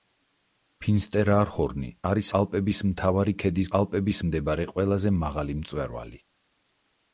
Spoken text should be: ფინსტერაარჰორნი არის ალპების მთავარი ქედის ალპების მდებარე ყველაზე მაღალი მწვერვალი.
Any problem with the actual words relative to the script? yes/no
no